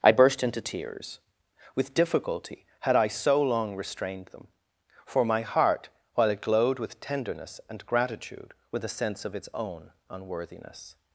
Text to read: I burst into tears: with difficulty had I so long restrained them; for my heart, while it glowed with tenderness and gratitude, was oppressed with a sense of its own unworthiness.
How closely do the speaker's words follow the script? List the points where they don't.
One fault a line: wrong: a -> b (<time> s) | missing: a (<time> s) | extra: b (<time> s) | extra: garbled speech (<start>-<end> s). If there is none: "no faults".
missing: was oppressed (8.5 s)